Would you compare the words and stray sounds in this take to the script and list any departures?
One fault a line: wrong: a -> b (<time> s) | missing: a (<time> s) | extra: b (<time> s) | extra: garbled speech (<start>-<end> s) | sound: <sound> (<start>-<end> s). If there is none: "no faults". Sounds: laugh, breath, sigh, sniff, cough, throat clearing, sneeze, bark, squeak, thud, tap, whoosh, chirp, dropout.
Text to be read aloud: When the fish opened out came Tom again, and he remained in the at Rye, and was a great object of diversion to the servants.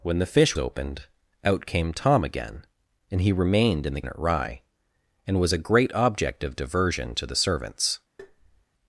sound: tap (8.2-8.7 s)